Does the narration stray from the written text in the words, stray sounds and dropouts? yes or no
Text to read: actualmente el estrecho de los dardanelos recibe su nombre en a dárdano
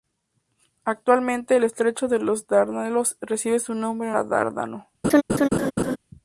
yes